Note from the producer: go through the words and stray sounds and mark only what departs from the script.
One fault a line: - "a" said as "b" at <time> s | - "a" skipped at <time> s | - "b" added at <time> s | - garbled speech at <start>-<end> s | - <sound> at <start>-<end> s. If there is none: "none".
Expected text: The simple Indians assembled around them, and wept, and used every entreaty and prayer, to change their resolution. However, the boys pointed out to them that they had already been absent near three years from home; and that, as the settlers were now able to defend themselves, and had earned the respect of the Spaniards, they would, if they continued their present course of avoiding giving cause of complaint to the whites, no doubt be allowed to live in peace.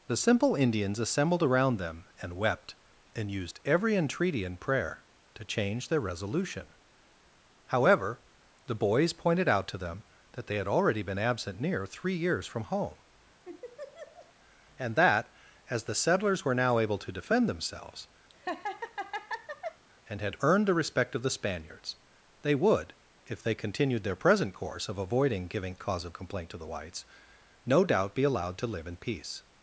- laugh at 13.4-14.3 s
- laugh at 18.3-19.8 s